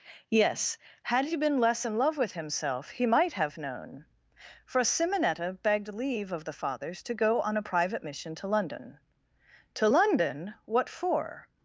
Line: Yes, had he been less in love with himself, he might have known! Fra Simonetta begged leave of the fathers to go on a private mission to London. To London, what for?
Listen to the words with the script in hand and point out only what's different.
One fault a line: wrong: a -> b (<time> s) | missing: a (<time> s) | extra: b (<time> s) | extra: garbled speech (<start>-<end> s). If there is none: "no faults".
wrong: Fra -> For (4.7 s)